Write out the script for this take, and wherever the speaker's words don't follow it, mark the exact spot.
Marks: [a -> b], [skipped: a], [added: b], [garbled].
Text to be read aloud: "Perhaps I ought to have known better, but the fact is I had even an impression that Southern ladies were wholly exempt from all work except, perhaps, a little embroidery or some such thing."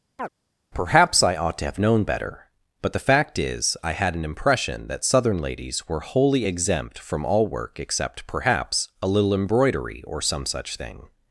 "Perhaps I ought to have known better, but the fact is I had [skipped: even] an impression that Southern ladies were wholly exempt from all work except, perhaps, a little embroidery or some such thing."